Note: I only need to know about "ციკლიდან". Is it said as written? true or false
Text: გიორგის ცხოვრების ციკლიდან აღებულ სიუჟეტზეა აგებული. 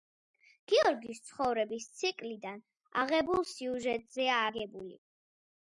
true